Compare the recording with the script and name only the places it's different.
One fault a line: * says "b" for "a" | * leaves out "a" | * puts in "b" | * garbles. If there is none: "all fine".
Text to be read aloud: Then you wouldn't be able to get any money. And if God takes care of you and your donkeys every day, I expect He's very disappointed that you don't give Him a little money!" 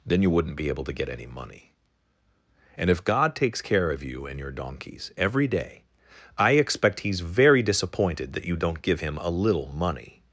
all fine